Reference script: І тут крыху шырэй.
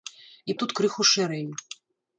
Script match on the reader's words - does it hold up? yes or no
yes